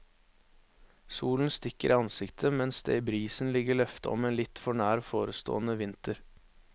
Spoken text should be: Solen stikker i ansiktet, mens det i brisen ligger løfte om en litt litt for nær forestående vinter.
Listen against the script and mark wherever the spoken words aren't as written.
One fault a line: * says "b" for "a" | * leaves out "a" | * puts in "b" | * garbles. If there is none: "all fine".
* leaves out "litt"